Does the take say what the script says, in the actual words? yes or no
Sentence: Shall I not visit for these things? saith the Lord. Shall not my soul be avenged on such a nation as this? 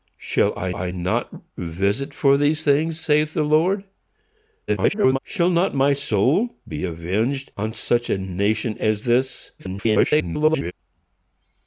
no